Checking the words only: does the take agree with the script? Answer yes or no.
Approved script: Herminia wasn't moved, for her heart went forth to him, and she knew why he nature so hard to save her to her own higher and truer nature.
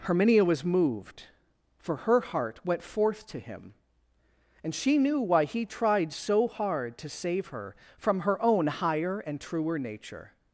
no